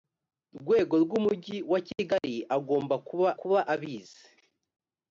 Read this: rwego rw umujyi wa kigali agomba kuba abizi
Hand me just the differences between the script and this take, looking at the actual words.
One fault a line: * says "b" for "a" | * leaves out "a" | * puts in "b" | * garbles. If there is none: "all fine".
* puts in "kuba"